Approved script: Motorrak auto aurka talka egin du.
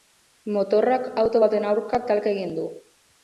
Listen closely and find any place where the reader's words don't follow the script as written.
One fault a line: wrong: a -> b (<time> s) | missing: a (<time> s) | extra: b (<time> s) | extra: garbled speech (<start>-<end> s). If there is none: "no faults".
extra: baten (1.4 s)